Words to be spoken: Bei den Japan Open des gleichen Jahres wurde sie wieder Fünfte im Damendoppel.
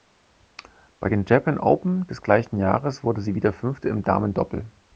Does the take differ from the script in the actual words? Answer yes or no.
no